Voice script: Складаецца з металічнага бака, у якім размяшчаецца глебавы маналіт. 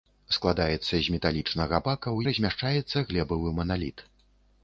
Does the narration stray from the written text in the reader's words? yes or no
yes